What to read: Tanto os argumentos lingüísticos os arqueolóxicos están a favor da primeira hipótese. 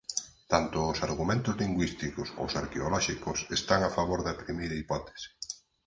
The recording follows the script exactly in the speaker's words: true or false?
true